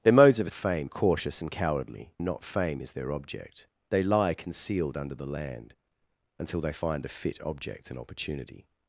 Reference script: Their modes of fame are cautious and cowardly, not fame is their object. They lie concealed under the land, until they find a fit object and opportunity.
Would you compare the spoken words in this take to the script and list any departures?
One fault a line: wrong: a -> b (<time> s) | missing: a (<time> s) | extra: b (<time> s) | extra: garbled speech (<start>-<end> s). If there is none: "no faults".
no faults